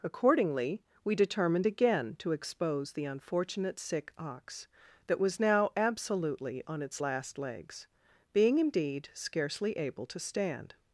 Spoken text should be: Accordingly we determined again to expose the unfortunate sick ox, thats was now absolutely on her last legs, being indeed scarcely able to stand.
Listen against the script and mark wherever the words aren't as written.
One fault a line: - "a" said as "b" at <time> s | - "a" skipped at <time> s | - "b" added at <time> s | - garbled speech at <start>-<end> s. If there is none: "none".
- "thats" said as "that" at 5.1 s
- "her" said as "its" at 6.8 s